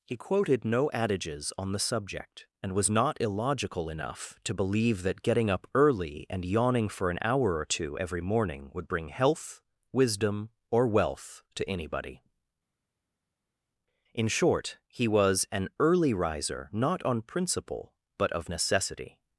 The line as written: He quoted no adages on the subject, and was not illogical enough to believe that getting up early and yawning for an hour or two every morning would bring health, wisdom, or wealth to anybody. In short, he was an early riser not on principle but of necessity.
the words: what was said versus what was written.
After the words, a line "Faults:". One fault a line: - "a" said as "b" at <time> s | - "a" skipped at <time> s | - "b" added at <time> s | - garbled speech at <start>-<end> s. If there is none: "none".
He quoted no adages on the subject, and was not illogical enough to believe that getting up early and yawning for an hour or two every morning would bring health, wisdom, or wealth to anybody. In short, he was an early riser not on principle but of necessity.
Faults:
none